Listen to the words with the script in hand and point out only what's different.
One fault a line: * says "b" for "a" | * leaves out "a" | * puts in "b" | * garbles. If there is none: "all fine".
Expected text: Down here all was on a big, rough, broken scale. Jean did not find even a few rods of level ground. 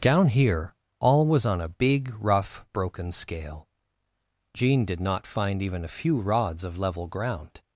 all fine